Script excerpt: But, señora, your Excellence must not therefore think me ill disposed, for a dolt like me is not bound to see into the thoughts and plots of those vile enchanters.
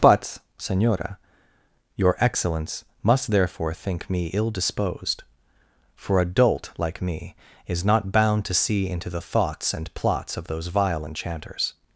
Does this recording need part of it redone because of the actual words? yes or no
yes